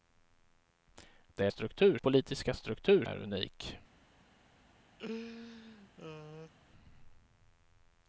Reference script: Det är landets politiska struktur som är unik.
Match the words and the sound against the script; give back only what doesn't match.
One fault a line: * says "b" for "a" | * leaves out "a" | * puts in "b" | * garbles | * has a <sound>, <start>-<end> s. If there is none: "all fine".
* says "struktur" for "landets"
* leaves out "som"
* has a laugh, 5.0-6.5 s